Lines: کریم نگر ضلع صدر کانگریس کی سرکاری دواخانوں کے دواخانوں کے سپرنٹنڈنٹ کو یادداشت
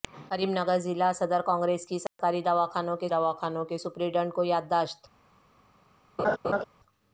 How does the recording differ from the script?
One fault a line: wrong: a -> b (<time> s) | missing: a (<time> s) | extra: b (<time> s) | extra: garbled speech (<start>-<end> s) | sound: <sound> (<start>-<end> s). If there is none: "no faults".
sound: dropout (2.1-2.2 s)
sound: laugh (6.2-6.6 s)